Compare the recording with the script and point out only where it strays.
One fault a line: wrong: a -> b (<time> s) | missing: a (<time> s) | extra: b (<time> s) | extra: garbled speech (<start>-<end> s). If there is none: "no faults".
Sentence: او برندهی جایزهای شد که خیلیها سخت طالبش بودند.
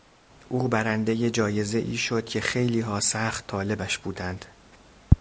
no faults